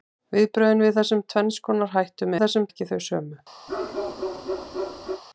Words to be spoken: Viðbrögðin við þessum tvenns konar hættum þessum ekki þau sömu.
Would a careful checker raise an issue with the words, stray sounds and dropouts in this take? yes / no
yes